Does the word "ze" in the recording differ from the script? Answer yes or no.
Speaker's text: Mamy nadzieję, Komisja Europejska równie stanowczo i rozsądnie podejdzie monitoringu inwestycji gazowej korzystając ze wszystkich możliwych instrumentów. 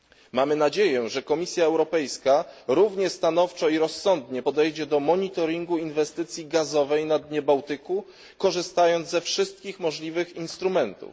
no